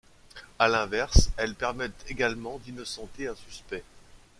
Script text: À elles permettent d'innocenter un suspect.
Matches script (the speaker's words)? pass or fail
fail